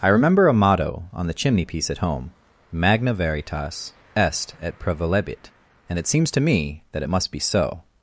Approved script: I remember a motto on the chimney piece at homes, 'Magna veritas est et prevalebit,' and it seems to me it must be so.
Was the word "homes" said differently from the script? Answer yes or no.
yes